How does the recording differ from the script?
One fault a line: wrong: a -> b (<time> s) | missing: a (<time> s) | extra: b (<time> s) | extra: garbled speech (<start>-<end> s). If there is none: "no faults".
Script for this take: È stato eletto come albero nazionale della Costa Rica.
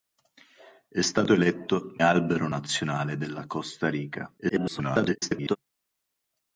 missing: come (2.0 s)
extra: garbled speech (4.4-5.6 s)